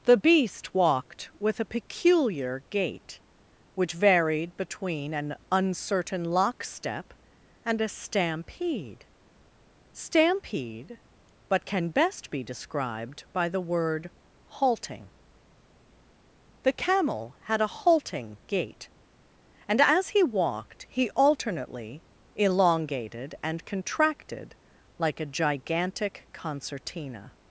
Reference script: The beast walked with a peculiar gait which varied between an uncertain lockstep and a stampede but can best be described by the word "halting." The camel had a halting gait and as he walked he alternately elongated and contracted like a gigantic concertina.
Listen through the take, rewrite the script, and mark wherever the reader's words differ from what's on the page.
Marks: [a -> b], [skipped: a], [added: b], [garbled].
The beast walked with a peculiar gait which varied between an uncertain lockstep and a stampede [added: stampede] but can best be described by the word "halting." The camel had a halting gait and as he walked he alternately elongated and contracted like a gigantic concertina.